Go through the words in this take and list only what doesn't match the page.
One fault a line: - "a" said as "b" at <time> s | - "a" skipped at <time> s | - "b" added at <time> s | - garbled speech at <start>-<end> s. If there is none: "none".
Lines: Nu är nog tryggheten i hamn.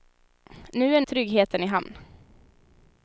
- "nog" skipped at 1.0 s